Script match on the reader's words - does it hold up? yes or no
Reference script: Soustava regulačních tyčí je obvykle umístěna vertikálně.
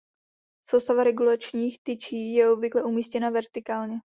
yes